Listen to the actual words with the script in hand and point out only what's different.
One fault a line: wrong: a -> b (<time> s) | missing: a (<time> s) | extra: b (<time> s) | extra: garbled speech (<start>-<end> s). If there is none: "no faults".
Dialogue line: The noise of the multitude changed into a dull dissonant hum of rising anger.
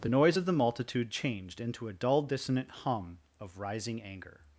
no faults